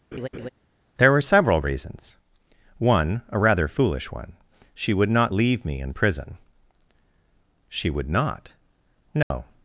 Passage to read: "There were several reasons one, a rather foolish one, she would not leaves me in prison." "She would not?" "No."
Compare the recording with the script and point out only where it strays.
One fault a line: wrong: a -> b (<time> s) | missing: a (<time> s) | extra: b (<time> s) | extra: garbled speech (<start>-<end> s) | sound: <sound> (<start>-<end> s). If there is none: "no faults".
sound: laugh (0.1-0.5 s)
wrong: leaves -> leave (5.3 s)
sound: dropout (9.2-9.3 s)